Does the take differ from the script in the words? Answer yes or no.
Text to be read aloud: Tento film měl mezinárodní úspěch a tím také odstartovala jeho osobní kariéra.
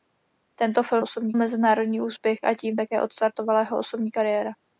yes